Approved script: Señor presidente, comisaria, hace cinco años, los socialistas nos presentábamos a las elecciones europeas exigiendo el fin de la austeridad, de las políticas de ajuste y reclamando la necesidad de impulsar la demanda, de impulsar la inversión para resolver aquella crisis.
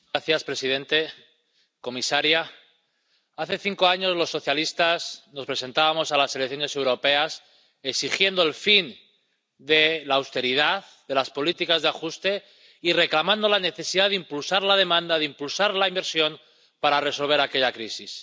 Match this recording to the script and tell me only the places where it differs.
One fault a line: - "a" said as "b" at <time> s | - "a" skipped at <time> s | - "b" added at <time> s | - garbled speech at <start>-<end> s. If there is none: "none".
none